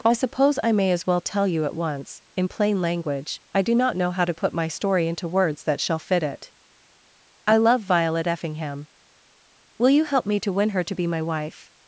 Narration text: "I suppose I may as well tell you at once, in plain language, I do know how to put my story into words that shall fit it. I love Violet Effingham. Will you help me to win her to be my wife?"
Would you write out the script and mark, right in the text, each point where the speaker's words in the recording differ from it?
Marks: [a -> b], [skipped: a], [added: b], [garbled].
"I suppose I may as well tell you at once, in plain language, I do [added: not] know how to put my story into words that shall fit it. I love Violet Effingham. Will you help me to win her to be my wife?"